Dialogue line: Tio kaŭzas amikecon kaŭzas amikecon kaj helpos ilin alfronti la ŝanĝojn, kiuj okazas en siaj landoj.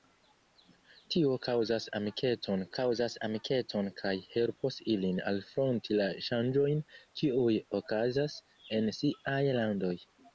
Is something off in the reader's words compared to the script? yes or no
no